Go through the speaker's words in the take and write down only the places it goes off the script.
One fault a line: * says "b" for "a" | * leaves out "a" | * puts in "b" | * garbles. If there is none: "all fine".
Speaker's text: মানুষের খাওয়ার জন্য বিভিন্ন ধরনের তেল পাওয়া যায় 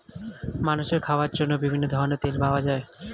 all fine